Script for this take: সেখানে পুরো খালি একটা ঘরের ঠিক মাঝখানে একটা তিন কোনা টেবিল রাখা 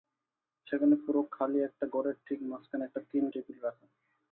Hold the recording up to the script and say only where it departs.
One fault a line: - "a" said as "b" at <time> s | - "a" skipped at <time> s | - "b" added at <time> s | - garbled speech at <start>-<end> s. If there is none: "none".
- "কোনা" skipped at 3.2 s